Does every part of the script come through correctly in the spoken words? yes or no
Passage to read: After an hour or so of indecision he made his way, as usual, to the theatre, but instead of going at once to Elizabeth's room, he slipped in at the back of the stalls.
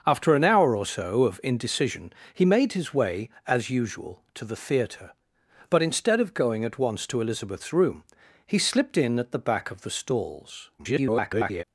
no